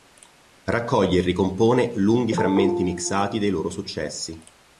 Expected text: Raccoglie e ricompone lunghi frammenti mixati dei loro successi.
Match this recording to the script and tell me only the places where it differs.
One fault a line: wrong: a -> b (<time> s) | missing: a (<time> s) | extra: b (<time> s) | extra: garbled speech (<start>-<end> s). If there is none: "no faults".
no faults